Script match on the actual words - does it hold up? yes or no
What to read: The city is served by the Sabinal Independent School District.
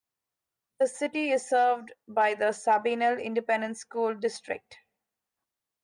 yes